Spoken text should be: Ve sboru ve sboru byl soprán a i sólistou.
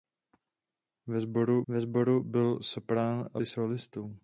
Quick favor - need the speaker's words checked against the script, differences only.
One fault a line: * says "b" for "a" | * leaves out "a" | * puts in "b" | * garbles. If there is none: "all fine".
all fine